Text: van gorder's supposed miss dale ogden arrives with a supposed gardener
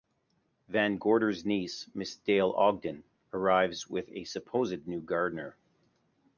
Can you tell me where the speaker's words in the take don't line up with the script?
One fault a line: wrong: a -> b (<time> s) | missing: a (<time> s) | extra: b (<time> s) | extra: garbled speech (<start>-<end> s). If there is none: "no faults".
wrong: supposed -> niece (1.4 s)
extra: new (4.9 s)